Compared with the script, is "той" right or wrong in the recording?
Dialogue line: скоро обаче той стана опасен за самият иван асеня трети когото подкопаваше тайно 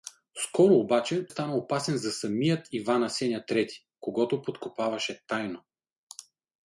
wrong